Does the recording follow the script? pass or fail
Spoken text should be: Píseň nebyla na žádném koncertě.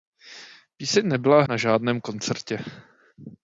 pass